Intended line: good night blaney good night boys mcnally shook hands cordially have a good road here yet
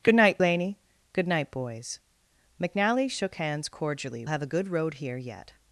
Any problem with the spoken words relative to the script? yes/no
no